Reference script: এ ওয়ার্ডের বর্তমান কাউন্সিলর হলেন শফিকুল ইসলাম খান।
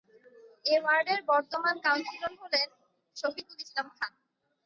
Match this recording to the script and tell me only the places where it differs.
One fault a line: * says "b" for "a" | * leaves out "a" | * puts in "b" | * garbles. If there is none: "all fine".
all fine